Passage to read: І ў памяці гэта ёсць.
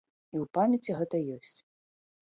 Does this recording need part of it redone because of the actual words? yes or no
no